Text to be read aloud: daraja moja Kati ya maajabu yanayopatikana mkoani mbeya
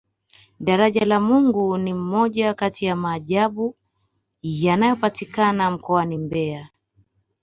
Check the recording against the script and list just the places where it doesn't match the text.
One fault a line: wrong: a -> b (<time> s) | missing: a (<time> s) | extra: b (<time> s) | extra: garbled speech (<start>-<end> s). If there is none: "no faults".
extra: la mungu ni (1.1 s)